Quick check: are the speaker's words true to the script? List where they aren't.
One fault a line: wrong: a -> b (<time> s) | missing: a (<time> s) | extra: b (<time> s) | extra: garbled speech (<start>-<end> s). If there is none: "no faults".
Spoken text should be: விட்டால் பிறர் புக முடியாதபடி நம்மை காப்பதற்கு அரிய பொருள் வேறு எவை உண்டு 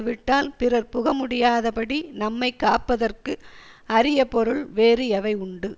no faults